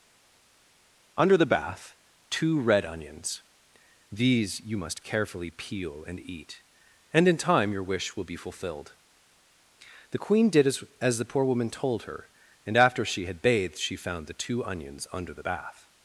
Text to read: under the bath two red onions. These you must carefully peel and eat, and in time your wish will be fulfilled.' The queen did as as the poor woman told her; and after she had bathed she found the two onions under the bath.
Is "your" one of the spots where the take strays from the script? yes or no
no